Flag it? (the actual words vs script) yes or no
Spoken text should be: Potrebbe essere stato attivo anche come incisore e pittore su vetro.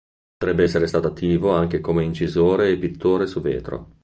no